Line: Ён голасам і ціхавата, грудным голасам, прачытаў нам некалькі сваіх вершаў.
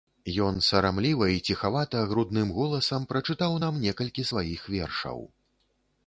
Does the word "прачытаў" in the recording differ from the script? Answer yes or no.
no